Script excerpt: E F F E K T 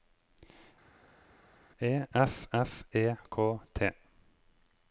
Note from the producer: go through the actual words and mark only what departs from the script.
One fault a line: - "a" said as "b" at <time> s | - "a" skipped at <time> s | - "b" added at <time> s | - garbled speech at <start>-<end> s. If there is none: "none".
none